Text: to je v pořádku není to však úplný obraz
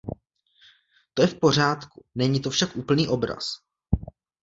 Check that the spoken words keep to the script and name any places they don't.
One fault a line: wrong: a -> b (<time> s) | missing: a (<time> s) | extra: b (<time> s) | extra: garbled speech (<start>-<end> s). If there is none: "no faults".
no faults